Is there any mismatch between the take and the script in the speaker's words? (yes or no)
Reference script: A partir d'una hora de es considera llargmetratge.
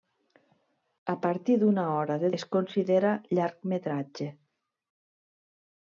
no